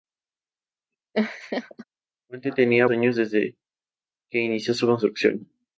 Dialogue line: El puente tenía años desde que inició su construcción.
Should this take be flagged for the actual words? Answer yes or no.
no